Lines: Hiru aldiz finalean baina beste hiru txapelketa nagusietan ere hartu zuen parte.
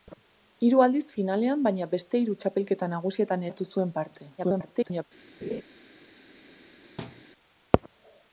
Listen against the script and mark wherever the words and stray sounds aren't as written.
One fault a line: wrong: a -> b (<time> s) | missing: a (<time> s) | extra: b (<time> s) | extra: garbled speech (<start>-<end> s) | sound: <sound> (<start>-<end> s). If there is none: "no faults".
missing: ere (3.4 s)
extra: garbled speech (4.4-5.0 s)
sound: laugh (5.4-5.6 s)
sound: thud (7.0-7.2 s)